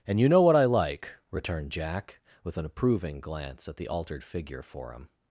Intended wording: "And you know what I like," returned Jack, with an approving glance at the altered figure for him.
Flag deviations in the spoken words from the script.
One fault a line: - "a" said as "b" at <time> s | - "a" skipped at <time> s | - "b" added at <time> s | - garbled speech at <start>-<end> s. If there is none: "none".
none